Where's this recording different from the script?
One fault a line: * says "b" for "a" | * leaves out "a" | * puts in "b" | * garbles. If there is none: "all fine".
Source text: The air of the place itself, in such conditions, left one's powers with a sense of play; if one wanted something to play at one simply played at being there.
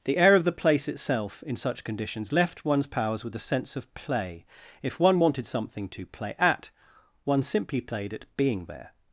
all fine